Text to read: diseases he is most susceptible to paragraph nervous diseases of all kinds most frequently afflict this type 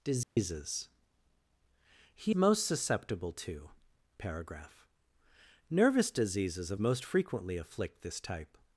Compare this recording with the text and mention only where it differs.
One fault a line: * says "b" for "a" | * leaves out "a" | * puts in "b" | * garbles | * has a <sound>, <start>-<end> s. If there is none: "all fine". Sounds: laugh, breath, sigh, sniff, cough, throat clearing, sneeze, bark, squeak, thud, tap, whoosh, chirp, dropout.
* has a dropout, 0.2-0.4 s
* leaves out "is"
* leaves out "all kinds"